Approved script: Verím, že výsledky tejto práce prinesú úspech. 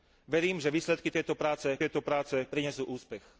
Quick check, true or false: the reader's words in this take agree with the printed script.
false